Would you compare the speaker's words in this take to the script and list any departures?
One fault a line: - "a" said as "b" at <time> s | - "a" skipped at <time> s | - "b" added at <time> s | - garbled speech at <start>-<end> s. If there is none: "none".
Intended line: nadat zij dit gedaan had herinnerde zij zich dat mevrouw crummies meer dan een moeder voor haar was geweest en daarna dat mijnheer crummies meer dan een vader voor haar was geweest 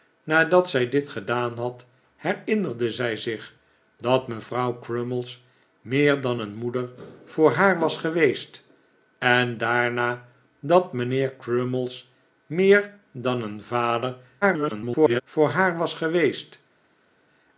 - garbled speech at 14.4-15.2 s